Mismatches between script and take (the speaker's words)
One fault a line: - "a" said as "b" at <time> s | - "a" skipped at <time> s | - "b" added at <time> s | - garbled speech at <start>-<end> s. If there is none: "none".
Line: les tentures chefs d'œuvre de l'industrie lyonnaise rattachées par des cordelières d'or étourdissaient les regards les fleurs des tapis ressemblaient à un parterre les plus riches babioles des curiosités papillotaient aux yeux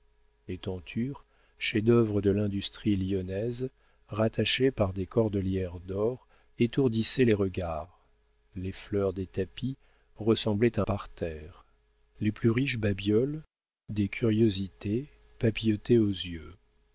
- "un" skipped at 10.8 s